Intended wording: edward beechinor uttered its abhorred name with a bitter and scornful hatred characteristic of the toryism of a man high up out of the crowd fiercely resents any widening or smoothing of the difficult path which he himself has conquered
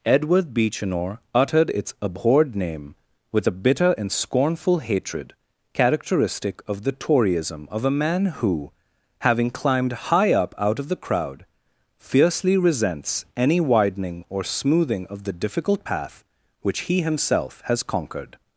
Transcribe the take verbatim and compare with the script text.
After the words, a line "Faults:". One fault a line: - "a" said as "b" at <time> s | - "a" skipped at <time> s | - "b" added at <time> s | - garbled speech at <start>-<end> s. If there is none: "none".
edward beechinor uttered its abhorred name with a bitter and scornful hatred characteristic of the toryism of a man who having climbed high up out of the crowd fiercely resents any widening or smoothing of the difficult path which he himself has conquered
Faults:
- "who having climbed" added at 8.3 s